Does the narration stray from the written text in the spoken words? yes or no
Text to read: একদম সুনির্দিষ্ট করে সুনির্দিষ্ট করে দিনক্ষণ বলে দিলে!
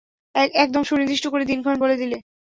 yes